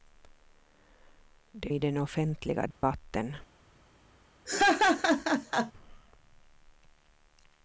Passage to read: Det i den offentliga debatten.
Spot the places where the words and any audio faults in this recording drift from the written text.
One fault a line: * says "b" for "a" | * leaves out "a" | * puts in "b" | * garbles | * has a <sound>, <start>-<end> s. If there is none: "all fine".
* has a dropout, 2.7-2.8 s
* has a laugh, 4.5-5.7 s